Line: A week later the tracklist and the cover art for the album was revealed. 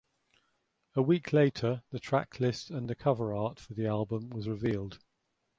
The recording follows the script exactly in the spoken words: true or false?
true